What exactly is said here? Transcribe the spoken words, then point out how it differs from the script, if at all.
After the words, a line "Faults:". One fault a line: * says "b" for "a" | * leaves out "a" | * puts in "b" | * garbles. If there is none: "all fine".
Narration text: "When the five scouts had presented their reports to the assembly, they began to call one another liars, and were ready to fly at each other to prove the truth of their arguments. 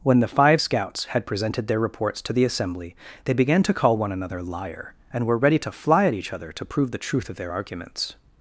"When the five scouts had presented their reports to the assembly, they began to call one another liar, and were ready to fly at each other to prove the truth of their arguments.
Faults:
* says "liar" for "liars"